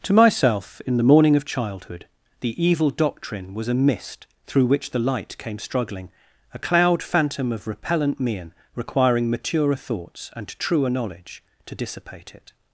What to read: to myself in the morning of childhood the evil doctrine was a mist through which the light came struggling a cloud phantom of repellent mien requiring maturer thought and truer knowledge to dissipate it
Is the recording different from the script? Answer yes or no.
yes